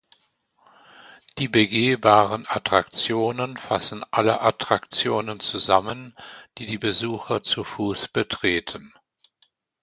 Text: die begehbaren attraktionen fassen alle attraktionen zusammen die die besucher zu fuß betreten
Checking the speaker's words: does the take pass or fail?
pass